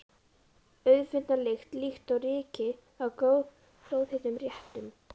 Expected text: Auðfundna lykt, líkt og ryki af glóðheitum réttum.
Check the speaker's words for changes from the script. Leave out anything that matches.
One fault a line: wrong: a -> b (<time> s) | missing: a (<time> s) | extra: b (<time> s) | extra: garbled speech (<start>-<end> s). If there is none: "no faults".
no faults